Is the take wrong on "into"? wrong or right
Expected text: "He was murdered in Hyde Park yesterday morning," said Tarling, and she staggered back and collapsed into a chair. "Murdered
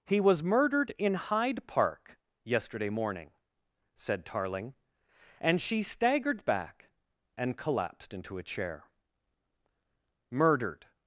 right